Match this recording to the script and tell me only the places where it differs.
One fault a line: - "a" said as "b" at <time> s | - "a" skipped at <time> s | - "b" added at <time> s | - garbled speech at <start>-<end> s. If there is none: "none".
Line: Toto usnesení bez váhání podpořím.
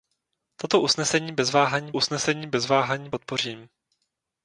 - "usnesení bez váhání" added at 1.9 s